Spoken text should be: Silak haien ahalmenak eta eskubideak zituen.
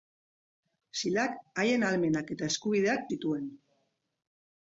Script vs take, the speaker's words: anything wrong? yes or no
no